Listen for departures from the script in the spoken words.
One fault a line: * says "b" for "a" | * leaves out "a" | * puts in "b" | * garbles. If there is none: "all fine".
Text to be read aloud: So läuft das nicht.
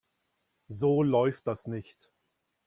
all fine